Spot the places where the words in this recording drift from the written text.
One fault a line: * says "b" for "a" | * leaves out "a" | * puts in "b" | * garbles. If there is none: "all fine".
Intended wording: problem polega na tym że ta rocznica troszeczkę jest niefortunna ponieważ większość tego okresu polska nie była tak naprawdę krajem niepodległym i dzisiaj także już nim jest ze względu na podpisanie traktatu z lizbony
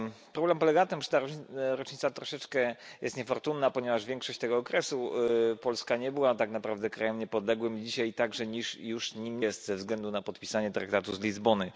all fine